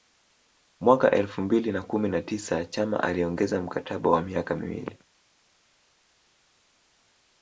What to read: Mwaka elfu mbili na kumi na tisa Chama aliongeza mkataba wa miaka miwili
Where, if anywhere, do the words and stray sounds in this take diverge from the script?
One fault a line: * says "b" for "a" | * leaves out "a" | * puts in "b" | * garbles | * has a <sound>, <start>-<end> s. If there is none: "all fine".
all fine